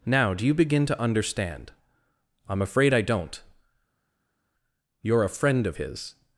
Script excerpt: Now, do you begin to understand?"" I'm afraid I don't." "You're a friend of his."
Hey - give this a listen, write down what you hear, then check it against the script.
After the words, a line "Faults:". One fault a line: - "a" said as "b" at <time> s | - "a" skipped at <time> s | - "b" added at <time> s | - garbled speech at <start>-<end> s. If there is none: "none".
Now, do you begin to understand?"" I'm afraid I don't." "You're a friend of his."
Faults:
none